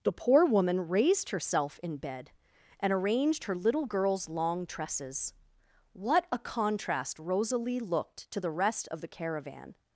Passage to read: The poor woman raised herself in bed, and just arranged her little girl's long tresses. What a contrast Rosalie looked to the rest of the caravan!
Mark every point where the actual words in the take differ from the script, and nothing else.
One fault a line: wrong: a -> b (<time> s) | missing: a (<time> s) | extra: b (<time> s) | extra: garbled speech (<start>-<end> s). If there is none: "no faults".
missing: just (2.9 s)